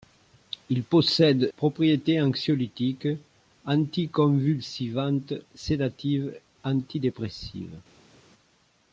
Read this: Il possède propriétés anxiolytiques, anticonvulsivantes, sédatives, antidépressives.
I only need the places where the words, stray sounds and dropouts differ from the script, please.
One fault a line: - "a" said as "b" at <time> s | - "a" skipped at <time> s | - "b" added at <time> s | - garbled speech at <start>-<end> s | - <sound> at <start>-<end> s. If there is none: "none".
none